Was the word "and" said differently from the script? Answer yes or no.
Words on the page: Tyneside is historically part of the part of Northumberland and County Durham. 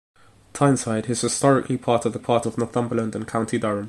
no